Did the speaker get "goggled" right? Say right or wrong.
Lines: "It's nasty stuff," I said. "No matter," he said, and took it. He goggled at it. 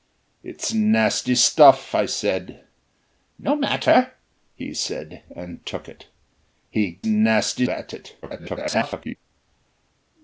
wrong